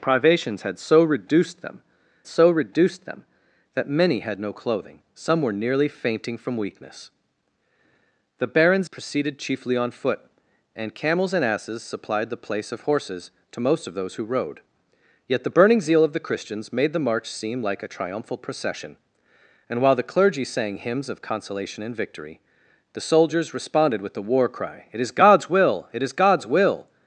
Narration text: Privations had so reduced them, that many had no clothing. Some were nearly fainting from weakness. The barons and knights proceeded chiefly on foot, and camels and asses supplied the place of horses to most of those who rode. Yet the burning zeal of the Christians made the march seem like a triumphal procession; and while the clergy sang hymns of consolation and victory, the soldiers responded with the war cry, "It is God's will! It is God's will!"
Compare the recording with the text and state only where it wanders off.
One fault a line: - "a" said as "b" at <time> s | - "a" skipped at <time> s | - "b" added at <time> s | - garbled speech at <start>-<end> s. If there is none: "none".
- "so reduced them" added at 2.3 s
- "and knights" skipped at 8.9 s